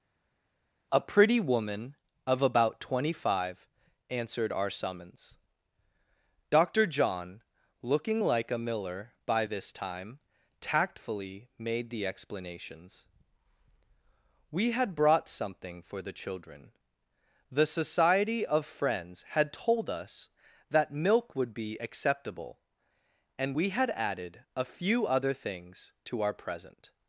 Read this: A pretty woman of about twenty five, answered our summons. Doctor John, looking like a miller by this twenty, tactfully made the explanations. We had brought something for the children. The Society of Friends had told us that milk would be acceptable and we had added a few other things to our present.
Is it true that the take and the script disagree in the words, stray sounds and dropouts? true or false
true